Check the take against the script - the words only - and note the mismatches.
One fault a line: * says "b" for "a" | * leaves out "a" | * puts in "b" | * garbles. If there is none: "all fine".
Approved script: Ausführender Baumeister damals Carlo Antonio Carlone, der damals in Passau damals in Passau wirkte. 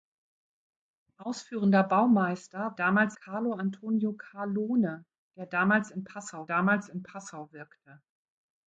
all fine